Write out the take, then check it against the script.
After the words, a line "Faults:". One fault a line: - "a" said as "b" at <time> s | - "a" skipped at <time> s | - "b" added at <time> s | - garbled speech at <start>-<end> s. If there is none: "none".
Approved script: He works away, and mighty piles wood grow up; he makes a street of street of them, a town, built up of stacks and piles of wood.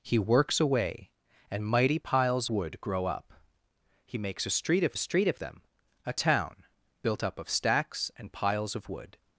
He works away, and mighty piles wood grow up; he makes a street of street of them, a town, built up of stacks and piles of wood.
Faults:
none